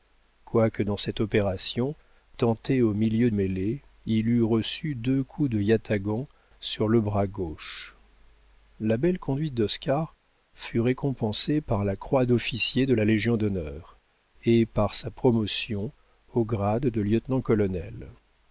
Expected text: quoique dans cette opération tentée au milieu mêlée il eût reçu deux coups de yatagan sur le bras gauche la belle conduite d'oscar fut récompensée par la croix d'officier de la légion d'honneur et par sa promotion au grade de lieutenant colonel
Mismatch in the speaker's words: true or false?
false